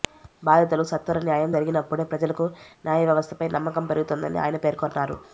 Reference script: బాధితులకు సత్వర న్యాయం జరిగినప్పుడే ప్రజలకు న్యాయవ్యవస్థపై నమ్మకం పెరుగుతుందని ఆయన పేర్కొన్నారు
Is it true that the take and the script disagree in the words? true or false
false